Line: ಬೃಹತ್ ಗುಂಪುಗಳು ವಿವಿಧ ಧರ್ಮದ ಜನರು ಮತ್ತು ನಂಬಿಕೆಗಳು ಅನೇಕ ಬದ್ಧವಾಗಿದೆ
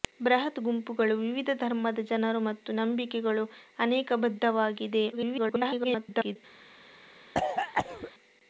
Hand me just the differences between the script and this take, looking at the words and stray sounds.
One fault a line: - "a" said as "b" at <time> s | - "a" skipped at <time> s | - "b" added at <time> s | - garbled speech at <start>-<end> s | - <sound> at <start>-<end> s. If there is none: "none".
- garbled speech at 5.1-6.4 s
- cough at 7.3-8.1 s